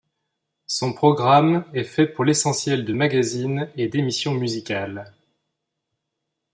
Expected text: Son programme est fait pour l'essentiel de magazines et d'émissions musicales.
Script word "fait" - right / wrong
right